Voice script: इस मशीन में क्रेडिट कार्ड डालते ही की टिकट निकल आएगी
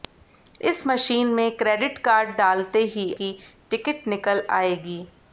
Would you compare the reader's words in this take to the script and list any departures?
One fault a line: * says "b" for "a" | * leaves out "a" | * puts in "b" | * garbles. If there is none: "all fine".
all fine